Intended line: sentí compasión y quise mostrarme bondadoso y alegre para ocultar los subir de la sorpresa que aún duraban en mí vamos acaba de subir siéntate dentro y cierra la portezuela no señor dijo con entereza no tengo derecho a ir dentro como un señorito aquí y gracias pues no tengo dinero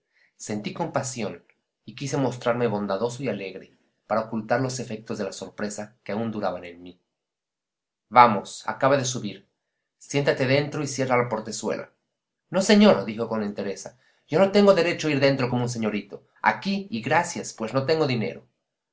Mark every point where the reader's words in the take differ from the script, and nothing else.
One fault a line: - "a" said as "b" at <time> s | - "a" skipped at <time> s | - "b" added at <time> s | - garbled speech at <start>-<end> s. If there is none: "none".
- "subir" said as "efectos" at 4.8 s
- "yo" added at 14.3 s